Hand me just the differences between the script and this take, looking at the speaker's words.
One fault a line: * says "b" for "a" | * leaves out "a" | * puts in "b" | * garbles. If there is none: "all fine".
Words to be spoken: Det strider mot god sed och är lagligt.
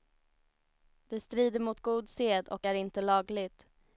* puts in "inte"